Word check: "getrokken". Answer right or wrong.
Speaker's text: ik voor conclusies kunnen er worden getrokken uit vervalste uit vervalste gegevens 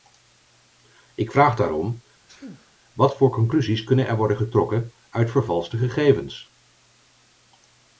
right